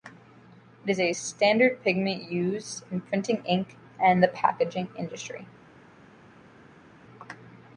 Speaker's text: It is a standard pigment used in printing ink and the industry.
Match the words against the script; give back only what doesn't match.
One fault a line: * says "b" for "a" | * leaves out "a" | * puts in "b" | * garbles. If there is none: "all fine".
* puts in "packaging"